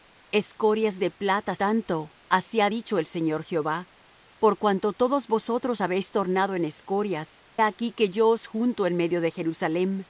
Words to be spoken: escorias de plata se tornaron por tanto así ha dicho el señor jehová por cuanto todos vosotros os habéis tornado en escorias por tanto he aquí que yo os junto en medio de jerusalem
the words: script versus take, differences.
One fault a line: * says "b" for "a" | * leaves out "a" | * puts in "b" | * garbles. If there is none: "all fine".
* leaves out "se tornaron por"
* leaves out "os"
* leaves out "por tanto he"